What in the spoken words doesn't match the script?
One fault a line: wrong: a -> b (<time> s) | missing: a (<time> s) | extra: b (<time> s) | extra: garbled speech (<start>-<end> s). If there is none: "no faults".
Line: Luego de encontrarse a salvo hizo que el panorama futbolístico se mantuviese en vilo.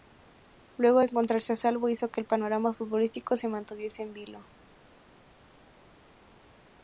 no faults